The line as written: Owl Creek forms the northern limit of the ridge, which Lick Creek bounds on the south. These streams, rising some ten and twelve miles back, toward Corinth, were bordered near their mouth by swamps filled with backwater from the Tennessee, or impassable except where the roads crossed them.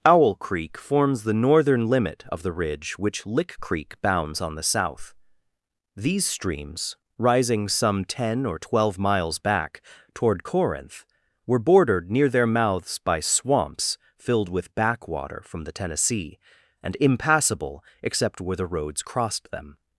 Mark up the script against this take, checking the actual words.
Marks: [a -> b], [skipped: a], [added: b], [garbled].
Owl Creek forms the northern limit of the ridge, which Lick Creek bounds on the south. These streams, rising some ten [and -> or] twelve miles back, toward Corinth, were bordered near their [mouth -> mouths] by swamps filled with backwater from the Tennessee, [or -> and] impassable except where the roads crossed them.